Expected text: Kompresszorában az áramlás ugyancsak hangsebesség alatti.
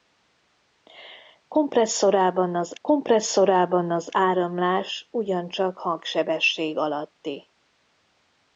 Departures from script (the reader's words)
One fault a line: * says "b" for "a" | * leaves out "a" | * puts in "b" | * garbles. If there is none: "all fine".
* puts in "kompresszorában az"